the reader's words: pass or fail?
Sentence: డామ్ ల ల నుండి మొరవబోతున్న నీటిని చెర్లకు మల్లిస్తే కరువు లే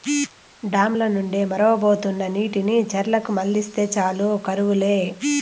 fail